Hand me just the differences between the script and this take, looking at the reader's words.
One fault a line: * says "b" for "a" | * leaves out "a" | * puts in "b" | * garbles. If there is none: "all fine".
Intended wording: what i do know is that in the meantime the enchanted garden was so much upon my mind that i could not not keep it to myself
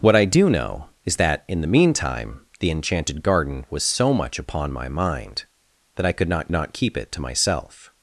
all fine